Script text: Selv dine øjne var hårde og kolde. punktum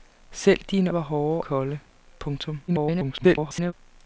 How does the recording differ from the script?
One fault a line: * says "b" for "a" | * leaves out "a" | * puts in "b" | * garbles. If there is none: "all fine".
* leaves out "øjne"
* leaves out "og"
* garbles